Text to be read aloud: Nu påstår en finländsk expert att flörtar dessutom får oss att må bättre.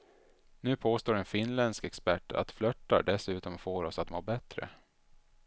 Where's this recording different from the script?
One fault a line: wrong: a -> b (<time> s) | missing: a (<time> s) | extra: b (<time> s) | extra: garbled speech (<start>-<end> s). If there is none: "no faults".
no faults